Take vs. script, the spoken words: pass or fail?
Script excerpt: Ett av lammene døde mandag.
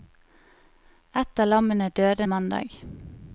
pass